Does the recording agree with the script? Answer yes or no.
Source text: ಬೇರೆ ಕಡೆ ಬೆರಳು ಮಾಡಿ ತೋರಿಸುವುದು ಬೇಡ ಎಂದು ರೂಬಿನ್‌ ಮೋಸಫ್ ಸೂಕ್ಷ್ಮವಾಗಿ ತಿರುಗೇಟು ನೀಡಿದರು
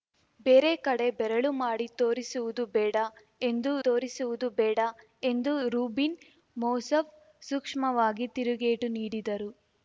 no